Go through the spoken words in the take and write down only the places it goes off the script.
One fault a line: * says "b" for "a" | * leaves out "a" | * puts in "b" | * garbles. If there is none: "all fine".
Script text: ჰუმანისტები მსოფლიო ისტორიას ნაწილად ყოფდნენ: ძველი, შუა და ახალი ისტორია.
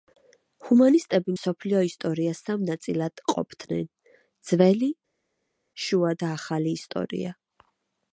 * puts in "სამ"